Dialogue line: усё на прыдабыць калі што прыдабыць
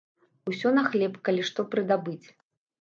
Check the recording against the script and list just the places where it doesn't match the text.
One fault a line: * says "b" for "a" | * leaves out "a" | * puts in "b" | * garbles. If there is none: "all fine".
* says "хлеб" for "прыдабыць"